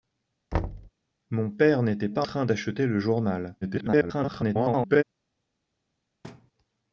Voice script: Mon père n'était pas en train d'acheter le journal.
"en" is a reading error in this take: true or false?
true